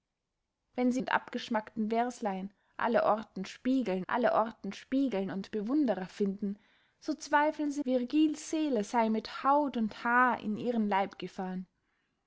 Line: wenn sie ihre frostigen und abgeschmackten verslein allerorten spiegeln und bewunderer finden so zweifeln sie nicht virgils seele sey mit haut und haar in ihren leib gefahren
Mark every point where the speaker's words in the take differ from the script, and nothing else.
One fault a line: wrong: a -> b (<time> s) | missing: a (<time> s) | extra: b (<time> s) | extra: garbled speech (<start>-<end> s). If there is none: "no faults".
missing: ihre frostigen (1.0 s)
extra: allerorten spiegeln (4.1 s)
missing: nicht (7.8 s)